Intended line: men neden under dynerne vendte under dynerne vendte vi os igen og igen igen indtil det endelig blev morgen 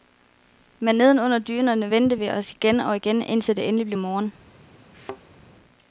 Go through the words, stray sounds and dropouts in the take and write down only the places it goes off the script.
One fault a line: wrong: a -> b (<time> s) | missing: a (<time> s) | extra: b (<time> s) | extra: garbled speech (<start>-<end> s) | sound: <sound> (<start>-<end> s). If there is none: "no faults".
missing: under dynerne vendte (2.2 s)
missing: igen (3.2 s)
sound: thud (4.9-5.2 s)